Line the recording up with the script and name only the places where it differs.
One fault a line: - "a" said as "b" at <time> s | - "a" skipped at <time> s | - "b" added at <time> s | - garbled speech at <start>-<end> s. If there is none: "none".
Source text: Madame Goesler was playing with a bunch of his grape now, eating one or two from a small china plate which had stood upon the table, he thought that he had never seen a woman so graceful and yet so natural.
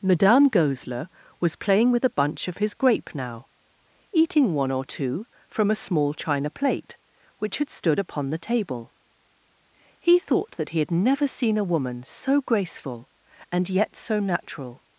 none